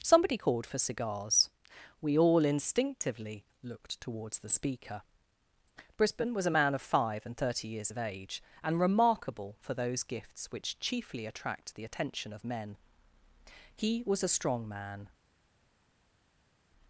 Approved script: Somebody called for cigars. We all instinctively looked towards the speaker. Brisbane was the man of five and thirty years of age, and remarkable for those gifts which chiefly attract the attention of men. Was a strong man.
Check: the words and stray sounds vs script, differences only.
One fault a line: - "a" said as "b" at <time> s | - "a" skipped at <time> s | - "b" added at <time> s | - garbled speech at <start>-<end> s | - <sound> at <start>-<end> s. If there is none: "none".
- "the" said as "a" at 6.5 s
- "He" added at 13.8 s